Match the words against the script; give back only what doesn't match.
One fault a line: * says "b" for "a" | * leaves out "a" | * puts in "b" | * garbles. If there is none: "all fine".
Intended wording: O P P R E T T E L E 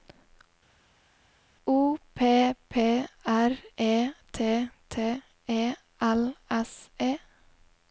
* puts in "S"